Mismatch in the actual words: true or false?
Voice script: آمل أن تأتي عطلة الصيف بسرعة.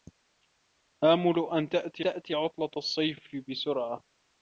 true